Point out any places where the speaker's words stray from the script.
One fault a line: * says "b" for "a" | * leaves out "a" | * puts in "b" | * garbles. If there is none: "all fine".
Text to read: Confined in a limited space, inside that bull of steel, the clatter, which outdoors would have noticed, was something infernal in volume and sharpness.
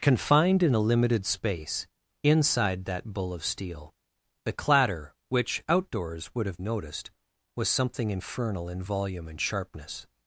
all fine